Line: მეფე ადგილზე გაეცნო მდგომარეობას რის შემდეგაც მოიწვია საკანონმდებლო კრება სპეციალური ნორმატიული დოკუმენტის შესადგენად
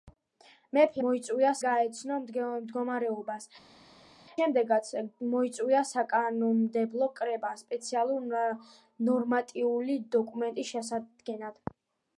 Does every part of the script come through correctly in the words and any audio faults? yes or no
no